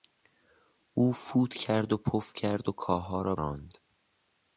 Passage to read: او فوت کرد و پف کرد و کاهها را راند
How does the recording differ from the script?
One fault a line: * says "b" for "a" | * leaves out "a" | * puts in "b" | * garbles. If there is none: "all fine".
all fine